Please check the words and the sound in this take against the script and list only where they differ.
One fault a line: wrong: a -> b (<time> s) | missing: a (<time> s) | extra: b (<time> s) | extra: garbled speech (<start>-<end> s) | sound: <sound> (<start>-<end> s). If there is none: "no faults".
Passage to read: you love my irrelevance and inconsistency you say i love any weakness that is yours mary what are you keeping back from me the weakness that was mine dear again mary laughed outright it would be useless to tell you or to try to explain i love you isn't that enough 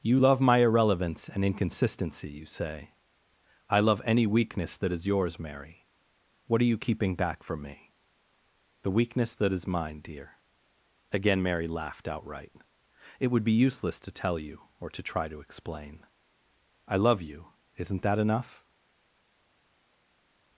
wrong: was -> is (9.5 s)